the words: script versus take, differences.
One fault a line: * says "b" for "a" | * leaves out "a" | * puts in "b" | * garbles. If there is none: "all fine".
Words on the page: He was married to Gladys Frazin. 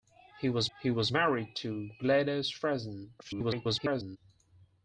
* puts in "he was"
* garbles